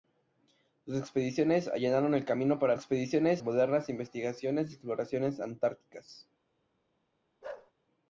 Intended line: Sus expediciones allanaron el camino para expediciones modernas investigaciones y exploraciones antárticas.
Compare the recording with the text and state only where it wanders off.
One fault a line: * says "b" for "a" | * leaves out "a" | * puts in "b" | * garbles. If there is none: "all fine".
all fine